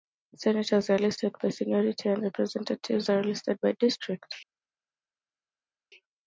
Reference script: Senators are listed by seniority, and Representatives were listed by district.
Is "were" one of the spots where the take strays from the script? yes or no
yes